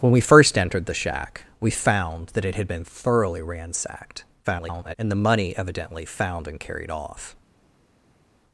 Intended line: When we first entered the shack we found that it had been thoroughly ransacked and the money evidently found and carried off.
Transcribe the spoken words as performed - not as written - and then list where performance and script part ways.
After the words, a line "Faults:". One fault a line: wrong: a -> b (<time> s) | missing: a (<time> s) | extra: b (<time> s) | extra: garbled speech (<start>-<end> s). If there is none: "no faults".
When we first entered the shack we found that it had been thoroughly ransacked [garbled] and the money evidently found and carried off.
Faults:
extra: garbled speech (4.4-4.9 s)